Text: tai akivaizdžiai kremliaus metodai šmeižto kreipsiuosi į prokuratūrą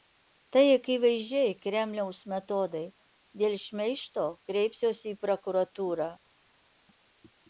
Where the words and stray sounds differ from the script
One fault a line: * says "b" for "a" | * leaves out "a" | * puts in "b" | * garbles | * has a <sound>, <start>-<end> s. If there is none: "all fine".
* puts in "dėl"